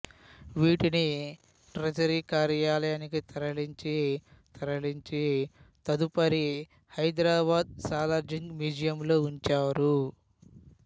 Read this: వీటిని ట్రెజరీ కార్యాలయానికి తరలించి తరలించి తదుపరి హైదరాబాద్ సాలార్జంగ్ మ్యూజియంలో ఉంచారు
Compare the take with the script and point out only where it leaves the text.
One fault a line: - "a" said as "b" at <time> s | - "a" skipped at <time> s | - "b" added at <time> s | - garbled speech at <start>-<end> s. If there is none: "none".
none